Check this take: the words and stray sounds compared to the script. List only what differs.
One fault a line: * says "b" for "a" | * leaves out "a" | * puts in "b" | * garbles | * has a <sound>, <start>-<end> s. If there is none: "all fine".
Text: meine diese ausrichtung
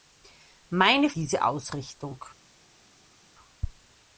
all fine